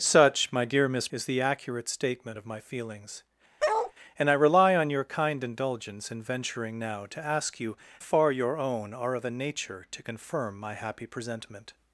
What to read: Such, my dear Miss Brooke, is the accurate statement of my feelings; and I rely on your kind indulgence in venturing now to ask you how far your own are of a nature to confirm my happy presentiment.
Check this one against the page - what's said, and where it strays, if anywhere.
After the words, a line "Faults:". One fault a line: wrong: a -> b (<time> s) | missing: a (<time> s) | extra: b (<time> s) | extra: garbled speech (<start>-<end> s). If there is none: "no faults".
Such, my dear Miss Is the accurate statement of my feelings; and I rely on your kind indulgence in venturing now to ask you far your own are of a nature to confirm my happy presentiment.
Faults:
missing: Brooke (1.1 s)
missing: how (7.8 s)